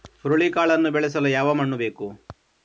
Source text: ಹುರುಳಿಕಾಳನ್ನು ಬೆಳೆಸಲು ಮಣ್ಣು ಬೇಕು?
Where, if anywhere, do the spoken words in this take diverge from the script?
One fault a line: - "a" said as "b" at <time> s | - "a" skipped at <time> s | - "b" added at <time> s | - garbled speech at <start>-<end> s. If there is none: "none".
- "ಯಾವ" added at 1.3 s